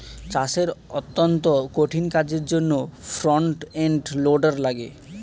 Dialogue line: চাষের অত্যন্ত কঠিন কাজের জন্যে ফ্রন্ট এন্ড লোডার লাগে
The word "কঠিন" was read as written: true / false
true